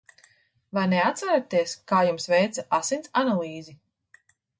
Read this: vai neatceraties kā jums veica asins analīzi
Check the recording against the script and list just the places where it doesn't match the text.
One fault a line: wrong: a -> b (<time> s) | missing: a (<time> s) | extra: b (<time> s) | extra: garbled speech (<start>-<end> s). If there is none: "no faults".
no faults